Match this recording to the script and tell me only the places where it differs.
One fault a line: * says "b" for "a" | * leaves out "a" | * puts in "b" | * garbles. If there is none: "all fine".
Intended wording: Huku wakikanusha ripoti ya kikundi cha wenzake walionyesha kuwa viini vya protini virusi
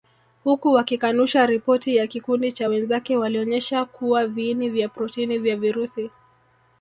* puts in "vya"